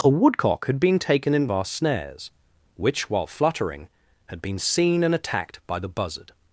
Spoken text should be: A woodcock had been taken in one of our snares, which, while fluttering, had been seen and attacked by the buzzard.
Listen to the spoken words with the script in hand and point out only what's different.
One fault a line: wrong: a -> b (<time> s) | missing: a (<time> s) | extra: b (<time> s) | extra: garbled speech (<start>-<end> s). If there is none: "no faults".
missing: one of (1.5 s)